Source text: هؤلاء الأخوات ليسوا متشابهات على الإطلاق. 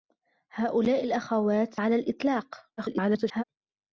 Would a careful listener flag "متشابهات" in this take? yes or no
yes